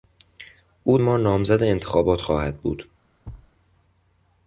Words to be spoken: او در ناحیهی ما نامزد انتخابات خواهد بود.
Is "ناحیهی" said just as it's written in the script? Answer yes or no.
no